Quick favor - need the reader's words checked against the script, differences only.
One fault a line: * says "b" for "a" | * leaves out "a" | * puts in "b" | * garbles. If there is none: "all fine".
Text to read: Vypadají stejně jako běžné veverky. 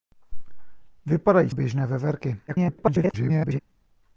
* leaves out "stejně jako"
* garbles